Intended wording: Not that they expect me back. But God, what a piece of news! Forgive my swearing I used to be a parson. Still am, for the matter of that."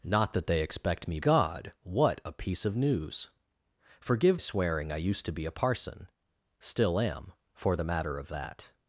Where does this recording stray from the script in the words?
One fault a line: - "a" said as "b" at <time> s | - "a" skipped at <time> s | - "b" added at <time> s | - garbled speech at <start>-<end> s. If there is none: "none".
- "back But" skipped at 1.2 s
- "my" skipped at 4.4 s